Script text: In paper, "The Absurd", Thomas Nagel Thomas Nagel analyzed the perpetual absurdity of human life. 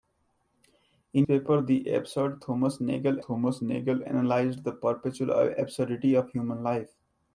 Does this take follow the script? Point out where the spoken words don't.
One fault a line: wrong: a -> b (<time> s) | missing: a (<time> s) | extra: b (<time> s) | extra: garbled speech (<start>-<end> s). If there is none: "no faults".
no faults